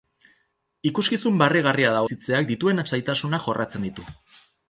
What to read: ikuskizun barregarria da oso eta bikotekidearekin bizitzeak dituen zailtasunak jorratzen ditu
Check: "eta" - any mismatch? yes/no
yes